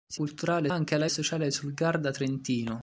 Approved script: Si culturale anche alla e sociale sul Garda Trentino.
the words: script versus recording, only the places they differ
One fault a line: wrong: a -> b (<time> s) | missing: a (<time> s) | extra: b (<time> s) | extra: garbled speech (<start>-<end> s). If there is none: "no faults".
no faults